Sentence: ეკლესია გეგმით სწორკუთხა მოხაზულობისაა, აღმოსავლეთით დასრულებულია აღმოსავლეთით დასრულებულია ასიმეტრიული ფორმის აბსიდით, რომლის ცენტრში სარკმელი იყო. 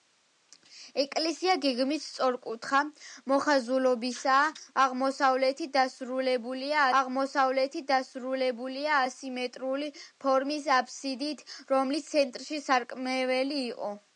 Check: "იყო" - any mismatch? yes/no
no